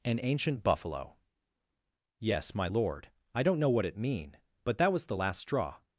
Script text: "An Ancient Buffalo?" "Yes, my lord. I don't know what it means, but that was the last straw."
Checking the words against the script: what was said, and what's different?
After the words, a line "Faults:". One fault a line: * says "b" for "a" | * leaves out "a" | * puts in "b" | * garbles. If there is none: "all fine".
"An Ancient Buffalo?" "Yes, my lord. I don't know what it mean, but that was the last straw."
Faults:
* says "mean" for "means"